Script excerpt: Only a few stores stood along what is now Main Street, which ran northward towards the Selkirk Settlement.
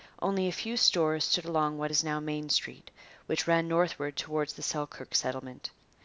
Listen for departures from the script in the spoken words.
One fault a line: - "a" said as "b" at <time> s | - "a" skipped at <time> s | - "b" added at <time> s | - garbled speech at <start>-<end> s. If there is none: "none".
none